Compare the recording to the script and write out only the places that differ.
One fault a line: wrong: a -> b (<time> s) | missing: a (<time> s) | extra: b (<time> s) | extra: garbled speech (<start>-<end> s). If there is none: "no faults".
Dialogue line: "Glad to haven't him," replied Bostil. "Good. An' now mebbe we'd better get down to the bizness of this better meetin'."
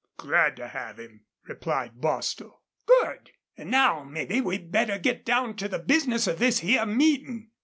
wrong: haven't -> have (0.7 s)
wrong: better -> here (6.6 s)